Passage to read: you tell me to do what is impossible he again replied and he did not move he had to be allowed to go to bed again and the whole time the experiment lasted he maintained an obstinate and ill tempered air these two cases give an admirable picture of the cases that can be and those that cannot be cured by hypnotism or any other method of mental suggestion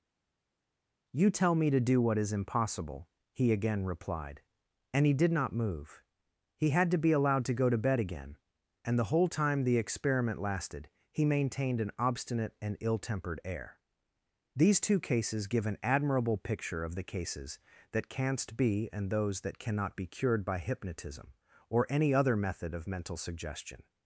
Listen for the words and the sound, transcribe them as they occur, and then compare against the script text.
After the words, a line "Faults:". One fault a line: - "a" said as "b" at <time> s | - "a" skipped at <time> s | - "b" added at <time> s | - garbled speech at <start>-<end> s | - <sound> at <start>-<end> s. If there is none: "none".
you tell me to do what is impossible he again replied and he did not move he had to be allowed to go to bed again and the whole time the experiment lasted he maintained an obstinate and ill tempered air these two cases give an admirable picture of the cases that canst be and those that cannot be cured by hypnotism or any other method of mental suggestion
Faults:
- "can" said as "canst" at 18.1 s